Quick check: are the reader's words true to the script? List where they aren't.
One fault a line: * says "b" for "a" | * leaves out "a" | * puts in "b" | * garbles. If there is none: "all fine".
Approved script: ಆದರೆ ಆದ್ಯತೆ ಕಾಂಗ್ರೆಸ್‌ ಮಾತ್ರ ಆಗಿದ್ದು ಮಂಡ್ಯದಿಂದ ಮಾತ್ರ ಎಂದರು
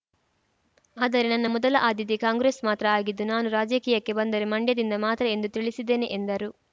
* puts in "ನನ್ನ ಮೊದಲ"
* puts in "ನಾನು ರಾಜಕೀಯಕ್ಕೆ ಬಂದರೆ"
* puts in "ಎಂದು ತಿಳಿಸಿದ್ದೇನೆ"